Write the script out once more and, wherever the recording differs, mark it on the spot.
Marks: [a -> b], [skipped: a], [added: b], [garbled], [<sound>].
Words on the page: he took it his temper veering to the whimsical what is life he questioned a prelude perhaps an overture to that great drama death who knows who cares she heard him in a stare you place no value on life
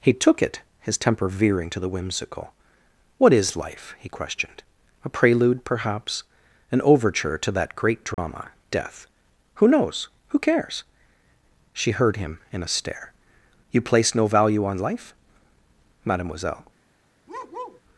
he took it his temper veering to the whimsical what is life he questioned a prelude perhaps an overture to that great drama [dropout] death who knows who cares she heard him in a stare you place no value on life [added: mademoiselle] [bark]